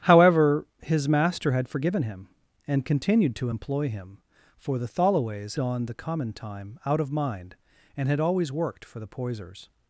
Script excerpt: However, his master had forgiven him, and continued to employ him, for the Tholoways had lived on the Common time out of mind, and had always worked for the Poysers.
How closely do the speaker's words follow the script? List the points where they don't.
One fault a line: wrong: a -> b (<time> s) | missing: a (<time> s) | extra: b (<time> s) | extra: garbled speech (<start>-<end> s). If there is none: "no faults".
missing: had lived (5.6 s)